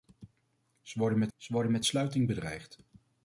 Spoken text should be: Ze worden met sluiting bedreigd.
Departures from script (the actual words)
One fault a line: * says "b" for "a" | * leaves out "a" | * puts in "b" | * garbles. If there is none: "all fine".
* puts in "ze worden met"